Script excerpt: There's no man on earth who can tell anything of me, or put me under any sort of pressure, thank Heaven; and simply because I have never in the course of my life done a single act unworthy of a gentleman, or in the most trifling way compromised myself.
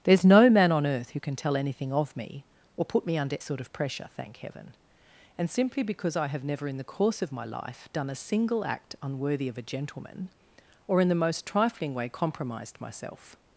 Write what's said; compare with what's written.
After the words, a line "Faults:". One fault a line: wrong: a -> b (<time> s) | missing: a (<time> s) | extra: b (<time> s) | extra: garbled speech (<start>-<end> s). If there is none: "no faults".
There's no man on earth who can tell anything of me, or put me under sort of pressure, thank Heaven; and simply because I have never in the course of my life done a single act unworthy of a gentleman, or in the most trifling way compromised myself.
Faults:
missing: any (3.4 s)